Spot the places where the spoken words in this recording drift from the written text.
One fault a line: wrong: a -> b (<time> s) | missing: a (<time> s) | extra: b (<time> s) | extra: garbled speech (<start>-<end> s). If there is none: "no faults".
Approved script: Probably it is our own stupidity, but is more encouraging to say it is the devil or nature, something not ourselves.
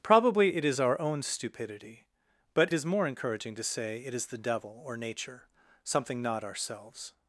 no faults